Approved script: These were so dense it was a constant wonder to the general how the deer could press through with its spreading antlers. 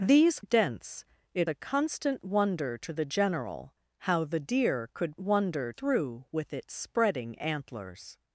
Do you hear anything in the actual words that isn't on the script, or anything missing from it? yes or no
yes